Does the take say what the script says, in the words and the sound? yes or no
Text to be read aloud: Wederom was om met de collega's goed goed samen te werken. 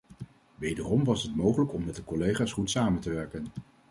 no